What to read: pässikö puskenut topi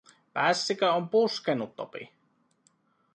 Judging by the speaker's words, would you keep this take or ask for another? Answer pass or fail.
fail